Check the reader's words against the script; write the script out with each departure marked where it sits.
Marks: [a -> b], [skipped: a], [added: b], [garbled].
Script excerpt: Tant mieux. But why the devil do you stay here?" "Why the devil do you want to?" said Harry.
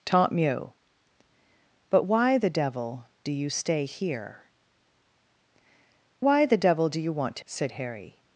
Tant mieux. But why the devil do you stay here?" "Why the devil do you want to?" said Harry.